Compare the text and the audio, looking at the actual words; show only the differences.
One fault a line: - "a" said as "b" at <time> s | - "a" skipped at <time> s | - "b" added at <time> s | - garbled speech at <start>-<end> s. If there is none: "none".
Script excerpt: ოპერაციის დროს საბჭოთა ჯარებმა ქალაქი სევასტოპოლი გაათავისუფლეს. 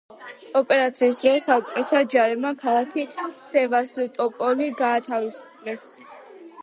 none